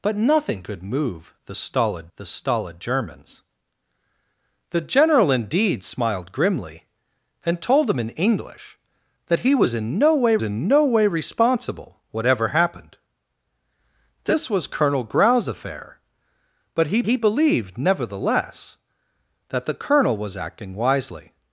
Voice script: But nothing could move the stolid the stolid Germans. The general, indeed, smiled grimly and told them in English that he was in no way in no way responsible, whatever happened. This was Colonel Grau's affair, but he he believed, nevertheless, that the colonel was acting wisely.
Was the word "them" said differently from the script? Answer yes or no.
no